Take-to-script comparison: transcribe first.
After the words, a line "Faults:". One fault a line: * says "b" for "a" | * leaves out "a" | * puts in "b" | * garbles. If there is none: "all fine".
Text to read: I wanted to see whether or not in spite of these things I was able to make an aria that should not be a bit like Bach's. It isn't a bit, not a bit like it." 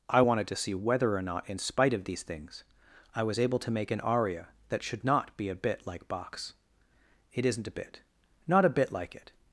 I wanted to see whether or not in spite of these things I was able to make an aria that should not be a bit like Bach's. It isn't a bit, not a bit like it."
Faults:
all fine